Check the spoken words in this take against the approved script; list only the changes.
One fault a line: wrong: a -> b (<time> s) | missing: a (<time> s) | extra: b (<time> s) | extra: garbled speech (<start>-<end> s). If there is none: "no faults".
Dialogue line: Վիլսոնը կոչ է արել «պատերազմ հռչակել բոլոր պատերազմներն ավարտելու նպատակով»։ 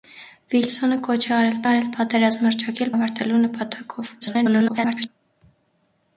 extra: արել (1.7 s)
missing: բոլոր պատերազմներն (2.9 s)
extra: garbled speech (4.2-5.1 s)